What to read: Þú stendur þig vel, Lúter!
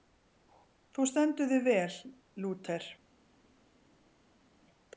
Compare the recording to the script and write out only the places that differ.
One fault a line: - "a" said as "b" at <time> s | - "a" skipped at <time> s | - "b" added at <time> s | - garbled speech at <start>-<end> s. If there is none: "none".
none